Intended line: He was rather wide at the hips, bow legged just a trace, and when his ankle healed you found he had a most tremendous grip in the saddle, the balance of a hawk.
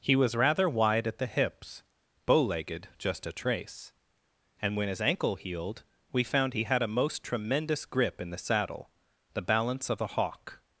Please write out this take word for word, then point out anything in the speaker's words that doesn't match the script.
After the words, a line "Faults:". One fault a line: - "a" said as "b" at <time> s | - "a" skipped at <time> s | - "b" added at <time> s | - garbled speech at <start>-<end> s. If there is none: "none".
He was rather wide at the hips, bow legged just a trace, and when his ankle healed we found he had a most tremendous grip in the saddle, the balance of a hawk.
Faults:
- "you" said as "we" at 6.1 s